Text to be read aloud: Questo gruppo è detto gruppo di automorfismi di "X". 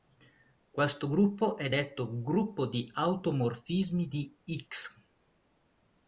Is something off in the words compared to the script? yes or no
no